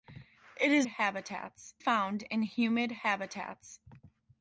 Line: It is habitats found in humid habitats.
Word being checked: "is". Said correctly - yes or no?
yes